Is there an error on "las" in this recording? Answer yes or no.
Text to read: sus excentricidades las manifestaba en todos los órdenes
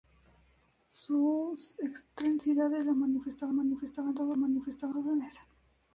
no